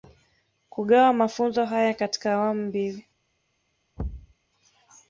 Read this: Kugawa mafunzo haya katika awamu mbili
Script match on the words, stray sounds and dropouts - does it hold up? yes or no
no